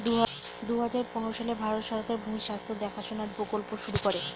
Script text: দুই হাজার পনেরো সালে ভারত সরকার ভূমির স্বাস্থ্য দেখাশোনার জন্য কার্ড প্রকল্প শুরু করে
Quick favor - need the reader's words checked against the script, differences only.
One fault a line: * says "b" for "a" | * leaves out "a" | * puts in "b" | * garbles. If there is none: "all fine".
* leaves out "জন্য কার্ড"